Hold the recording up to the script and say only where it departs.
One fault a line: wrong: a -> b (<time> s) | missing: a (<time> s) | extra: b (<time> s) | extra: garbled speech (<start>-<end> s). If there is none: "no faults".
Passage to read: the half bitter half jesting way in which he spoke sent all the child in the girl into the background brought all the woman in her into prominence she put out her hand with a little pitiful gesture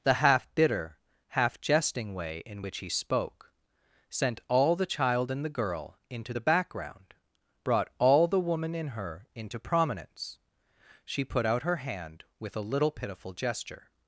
no faults